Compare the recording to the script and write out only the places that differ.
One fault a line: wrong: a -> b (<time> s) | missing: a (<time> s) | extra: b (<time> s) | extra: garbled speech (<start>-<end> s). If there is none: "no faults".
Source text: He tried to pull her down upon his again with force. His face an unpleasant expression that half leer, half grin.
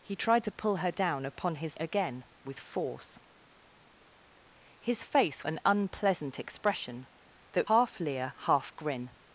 no faults